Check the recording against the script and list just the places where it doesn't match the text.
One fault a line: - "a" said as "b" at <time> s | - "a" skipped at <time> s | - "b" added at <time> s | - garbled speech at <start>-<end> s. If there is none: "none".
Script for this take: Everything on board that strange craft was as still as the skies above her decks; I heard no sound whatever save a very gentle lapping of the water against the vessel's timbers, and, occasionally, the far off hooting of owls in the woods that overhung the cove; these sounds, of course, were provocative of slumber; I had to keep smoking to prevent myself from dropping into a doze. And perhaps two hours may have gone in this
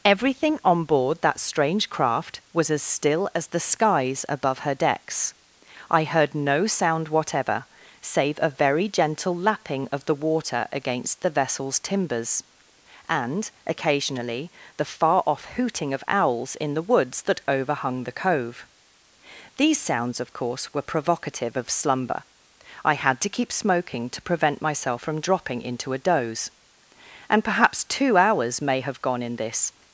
none